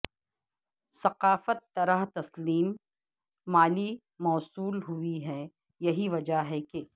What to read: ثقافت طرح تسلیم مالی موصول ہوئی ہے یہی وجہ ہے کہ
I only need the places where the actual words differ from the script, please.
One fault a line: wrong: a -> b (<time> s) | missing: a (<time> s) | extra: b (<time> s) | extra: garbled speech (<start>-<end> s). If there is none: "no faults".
no faults